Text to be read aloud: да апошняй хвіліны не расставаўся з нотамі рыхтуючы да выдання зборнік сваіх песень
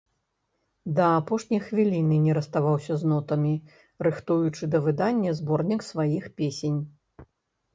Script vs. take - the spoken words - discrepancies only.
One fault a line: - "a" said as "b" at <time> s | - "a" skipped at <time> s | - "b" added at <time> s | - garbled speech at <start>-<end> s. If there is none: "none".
none